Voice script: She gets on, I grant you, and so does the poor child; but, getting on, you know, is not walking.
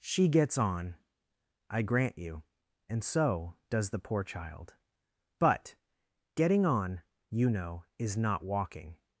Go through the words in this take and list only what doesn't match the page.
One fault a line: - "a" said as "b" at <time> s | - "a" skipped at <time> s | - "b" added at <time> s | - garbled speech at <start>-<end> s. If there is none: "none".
none